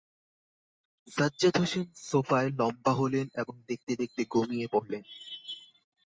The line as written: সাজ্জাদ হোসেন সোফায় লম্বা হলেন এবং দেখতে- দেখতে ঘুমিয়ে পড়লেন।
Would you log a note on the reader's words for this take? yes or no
no